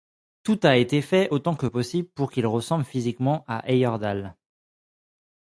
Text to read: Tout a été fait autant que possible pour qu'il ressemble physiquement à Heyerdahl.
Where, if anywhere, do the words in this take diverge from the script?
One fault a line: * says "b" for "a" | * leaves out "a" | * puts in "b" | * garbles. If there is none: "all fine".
all fine